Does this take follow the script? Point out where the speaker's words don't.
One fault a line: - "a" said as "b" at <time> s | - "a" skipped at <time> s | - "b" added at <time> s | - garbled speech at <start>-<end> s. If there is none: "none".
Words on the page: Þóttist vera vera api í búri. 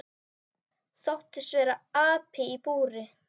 - "vera" skipped at 1.8 s